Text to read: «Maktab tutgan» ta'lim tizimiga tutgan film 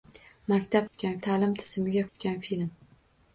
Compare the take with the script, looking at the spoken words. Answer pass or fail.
pass